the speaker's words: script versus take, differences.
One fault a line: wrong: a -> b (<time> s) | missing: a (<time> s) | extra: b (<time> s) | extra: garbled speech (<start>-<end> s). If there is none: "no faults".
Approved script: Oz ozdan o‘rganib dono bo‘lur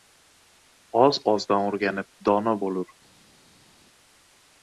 no faults